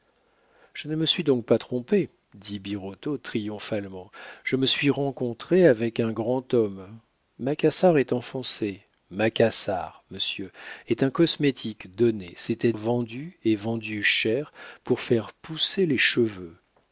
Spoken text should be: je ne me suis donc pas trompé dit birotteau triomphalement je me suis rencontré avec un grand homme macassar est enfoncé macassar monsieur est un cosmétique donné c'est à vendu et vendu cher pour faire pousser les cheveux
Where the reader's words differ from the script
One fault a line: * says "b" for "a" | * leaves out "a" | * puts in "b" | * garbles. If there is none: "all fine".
all fine